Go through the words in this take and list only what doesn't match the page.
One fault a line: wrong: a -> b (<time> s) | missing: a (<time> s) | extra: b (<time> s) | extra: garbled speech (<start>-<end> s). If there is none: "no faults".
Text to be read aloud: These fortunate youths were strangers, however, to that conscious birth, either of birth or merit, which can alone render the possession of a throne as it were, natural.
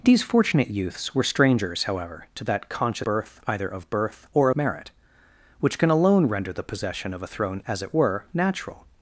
no faults